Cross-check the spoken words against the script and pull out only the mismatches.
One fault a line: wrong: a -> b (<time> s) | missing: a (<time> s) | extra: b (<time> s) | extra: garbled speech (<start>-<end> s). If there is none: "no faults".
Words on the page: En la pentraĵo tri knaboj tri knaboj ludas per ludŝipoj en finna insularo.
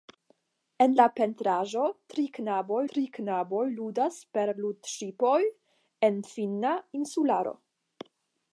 no faults